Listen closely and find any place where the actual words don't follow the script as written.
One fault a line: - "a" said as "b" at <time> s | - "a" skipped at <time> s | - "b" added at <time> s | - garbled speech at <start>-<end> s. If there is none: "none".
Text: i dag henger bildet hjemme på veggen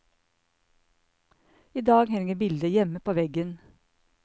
none